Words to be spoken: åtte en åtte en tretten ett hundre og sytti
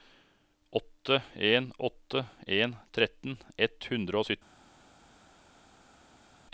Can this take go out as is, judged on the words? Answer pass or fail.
pass